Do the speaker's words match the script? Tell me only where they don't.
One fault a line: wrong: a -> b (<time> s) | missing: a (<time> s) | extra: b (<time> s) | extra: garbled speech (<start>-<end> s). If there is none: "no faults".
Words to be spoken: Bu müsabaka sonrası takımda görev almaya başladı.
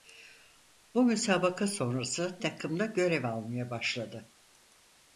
no faults